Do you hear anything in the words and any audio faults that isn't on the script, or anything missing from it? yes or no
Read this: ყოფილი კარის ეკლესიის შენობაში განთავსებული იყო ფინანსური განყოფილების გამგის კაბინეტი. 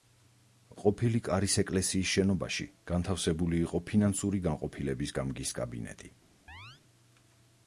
yes